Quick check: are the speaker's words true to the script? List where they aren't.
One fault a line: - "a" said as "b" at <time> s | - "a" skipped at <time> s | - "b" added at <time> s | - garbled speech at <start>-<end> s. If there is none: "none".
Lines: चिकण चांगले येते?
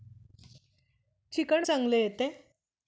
none